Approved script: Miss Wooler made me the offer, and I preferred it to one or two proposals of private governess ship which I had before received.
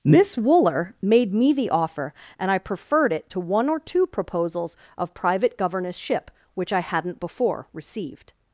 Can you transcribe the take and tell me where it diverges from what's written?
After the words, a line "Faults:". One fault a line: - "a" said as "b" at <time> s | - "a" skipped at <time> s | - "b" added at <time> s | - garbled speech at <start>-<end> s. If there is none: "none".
Miss Wooler made me the offer, and I preferred it to one or two proposals of private governess ship which I hadn't before received.
Faults:
- "had" said as "hadn't" at 6.8 s